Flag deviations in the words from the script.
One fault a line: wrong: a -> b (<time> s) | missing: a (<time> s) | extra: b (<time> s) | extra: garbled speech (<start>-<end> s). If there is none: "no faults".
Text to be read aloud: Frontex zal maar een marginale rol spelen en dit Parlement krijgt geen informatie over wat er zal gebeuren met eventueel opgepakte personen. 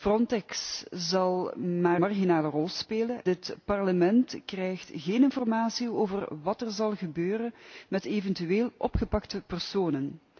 missing: een (2.0 s)
missing: en (3.2 s)